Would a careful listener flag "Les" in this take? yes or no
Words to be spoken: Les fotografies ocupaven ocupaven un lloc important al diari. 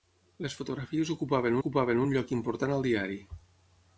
no